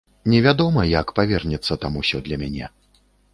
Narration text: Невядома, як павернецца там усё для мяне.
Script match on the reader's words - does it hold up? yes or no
yes